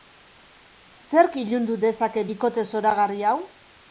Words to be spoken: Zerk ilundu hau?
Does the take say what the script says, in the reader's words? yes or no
no